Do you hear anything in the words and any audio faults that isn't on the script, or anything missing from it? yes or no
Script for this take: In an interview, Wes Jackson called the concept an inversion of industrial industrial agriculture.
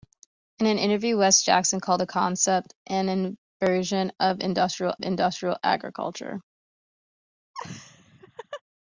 yes